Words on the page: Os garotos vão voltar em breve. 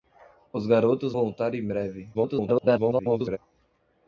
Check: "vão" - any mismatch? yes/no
yes